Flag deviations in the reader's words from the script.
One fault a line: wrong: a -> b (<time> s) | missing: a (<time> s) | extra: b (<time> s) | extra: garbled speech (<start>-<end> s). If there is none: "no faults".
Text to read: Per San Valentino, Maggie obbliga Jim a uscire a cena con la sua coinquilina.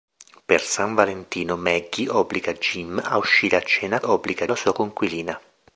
wrong: con -> obbliga (4.0 s)